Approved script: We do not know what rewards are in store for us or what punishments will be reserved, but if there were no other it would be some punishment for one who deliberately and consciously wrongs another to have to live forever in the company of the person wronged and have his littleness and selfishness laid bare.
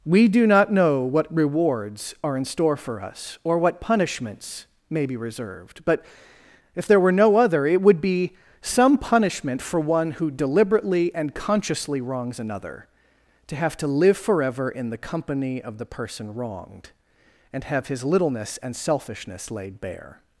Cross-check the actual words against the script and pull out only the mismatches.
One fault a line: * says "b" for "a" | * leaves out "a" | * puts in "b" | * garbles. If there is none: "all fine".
* says "may" for "will"